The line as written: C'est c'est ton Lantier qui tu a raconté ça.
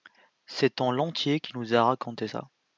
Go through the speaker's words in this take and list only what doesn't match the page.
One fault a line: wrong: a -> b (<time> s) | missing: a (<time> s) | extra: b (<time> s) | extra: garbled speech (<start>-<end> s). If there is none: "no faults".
missing: c'est (0.8 s)
wrong: tu -> nous (1.6 s)